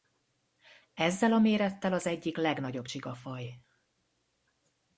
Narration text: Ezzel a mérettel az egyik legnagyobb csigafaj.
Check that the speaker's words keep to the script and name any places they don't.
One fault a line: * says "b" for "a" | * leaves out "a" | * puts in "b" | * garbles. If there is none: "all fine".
all fine